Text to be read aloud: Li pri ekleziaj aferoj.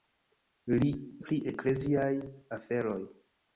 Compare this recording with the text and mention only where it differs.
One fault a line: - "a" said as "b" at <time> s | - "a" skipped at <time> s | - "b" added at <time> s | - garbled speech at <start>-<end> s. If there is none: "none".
none